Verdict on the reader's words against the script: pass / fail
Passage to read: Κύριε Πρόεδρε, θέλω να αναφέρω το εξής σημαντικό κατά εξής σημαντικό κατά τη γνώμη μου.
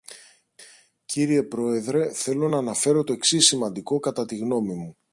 fail